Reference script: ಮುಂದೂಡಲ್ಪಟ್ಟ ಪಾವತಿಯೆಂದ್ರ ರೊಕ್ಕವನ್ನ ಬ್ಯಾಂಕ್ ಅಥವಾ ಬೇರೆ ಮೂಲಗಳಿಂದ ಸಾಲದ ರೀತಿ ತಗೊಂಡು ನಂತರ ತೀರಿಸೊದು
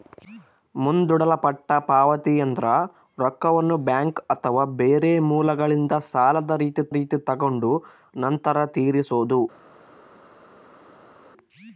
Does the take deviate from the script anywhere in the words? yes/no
yes